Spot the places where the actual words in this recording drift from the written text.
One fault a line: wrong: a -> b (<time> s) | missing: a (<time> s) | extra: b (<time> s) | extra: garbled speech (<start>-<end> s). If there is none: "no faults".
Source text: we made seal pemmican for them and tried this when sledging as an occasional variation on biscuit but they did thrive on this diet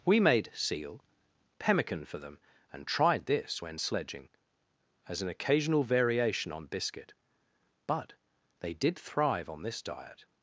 no faults